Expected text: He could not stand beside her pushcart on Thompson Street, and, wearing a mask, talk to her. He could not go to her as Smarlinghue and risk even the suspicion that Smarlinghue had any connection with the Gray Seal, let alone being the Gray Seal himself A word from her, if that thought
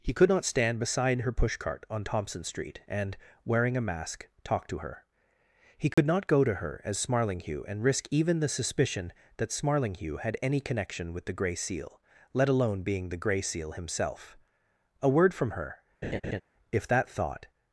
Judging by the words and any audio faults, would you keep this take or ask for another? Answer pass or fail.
fail